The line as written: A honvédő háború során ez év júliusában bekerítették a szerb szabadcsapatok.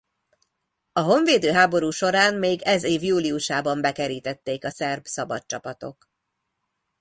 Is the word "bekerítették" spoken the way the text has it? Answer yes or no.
yes